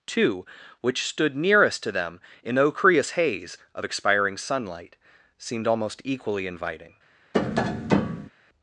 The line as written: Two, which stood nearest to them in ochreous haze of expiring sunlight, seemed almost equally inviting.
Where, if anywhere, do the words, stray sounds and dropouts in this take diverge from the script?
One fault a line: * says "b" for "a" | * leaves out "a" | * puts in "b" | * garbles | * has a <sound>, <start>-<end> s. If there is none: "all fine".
* has a tap, 7.3-8.3 s